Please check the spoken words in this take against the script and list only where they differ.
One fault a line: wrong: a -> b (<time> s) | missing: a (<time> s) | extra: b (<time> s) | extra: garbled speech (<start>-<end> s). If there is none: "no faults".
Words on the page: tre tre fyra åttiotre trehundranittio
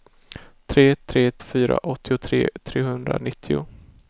no faults